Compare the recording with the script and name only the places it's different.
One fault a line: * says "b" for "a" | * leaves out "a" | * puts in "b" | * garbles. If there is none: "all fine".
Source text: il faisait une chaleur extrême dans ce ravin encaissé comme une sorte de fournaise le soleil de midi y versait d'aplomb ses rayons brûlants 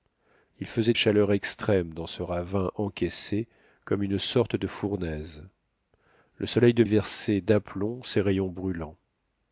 * leaves out "une"
* leaves out "midi"